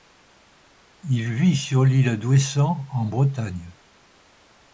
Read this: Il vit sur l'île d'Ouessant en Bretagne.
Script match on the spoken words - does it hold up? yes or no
yes